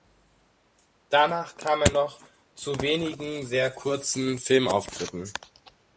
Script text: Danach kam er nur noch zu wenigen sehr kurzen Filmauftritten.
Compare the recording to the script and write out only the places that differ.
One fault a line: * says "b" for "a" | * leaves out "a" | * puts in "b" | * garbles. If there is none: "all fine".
* leaves out "nur"